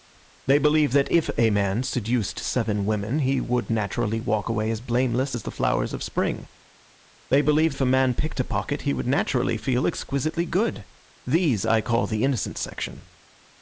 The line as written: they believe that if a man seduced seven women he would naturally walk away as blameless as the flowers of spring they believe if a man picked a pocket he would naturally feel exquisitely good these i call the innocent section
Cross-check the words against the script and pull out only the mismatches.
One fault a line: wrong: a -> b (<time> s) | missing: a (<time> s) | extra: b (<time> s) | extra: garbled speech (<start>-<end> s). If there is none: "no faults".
no faults